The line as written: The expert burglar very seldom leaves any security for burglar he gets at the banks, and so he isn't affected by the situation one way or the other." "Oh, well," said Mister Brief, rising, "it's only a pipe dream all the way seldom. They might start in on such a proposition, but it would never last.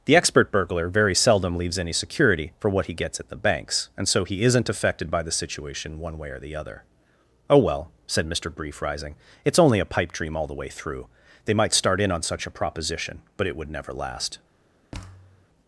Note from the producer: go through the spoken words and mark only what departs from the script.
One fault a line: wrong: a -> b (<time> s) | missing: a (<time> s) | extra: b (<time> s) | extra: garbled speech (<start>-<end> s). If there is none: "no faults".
wrong: burglar -> what (2.7 s)
wrong: seldom -> through (10.7 s)